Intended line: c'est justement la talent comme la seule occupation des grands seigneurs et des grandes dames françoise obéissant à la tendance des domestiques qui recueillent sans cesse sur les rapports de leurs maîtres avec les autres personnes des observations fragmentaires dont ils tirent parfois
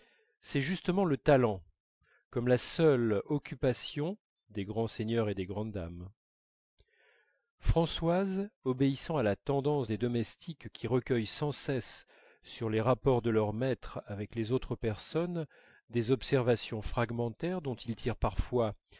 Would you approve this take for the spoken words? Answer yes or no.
no